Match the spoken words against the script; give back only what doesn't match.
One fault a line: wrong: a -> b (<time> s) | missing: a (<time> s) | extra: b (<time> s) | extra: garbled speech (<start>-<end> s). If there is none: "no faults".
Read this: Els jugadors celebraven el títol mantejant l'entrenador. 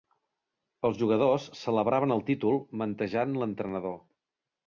no faults